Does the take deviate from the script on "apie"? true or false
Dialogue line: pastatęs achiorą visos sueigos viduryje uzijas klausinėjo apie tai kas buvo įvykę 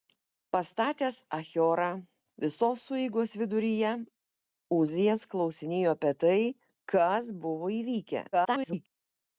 false